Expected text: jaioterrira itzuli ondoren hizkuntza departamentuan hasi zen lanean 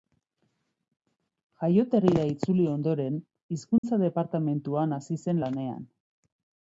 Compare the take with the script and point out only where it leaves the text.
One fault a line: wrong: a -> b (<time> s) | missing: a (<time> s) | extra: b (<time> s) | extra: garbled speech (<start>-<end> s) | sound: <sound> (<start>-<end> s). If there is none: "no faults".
sound: dropout (3.8-3.8 s)